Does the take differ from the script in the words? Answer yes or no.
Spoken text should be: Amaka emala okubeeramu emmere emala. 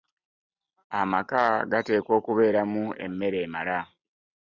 yes